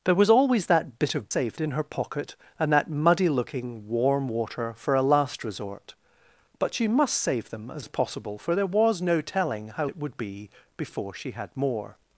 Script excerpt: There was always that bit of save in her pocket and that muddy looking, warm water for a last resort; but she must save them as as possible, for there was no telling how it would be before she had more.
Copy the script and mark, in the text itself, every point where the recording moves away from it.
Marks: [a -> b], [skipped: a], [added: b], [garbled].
There was always that bit of save in her pocket and that muddy looking, warm water for a last resort; but she must save them as as possible, for there was no telling how it would be before she had more.